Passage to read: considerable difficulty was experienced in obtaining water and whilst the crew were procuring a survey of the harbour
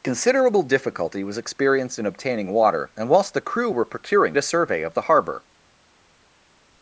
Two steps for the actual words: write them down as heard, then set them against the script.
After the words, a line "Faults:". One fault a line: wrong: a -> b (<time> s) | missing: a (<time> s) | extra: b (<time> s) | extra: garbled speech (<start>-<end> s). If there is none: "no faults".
considerable difficulty was experienced in obtaining water and whilst the crew were procuring a survey of the harbour
Faults:
no faults